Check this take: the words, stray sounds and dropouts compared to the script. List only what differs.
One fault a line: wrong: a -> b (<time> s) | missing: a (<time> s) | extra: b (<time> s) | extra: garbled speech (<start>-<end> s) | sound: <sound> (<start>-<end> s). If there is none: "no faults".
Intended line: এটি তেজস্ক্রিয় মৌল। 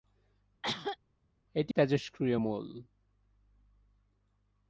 sound: cough (0.6-1.0 s)